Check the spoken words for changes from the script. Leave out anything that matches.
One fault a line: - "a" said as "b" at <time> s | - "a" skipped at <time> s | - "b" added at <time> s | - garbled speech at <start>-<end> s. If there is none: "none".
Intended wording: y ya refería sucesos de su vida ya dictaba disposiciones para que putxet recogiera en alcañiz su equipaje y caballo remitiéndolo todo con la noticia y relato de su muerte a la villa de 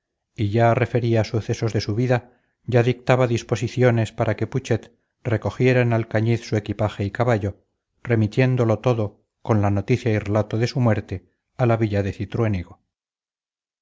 none